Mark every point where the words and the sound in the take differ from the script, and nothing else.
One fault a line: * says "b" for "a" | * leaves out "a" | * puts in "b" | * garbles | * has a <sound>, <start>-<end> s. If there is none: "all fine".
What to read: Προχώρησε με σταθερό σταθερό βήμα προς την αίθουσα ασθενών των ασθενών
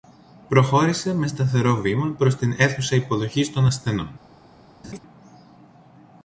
* leaves out "σταθερό"
* says "υποδοχής" for "ασθενών"
* has a laugh, 4.8-5.0 s